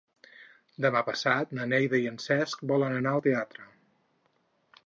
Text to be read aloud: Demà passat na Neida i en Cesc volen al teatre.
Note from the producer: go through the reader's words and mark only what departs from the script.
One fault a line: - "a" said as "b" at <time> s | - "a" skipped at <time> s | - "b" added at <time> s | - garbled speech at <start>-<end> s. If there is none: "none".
- "anar" added at 3.0 s